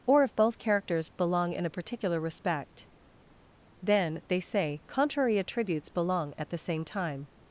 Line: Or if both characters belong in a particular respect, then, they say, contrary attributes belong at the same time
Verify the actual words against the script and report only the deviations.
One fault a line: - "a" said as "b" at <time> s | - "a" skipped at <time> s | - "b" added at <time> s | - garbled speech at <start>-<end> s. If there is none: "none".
none